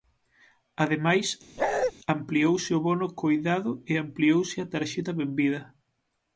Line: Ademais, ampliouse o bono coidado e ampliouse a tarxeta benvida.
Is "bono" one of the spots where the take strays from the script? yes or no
no